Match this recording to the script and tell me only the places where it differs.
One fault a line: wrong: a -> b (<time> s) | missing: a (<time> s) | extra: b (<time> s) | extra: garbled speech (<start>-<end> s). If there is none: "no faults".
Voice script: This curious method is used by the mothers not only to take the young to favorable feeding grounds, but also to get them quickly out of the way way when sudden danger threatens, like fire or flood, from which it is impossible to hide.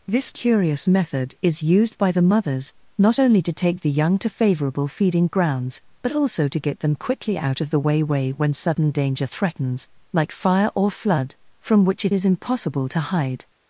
no faults